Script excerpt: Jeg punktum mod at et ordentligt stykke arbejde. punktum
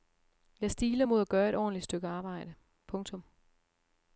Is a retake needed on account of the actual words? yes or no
yes